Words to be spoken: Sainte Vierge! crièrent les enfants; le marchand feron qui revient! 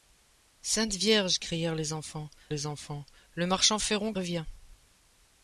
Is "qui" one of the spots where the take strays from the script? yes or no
yes